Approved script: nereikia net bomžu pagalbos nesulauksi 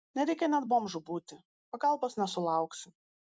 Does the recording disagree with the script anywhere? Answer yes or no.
yes